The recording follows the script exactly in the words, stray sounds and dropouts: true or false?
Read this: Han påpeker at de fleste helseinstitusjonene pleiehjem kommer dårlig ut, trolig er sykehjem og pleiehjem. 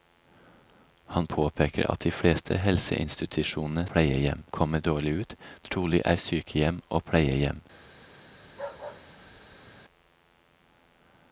false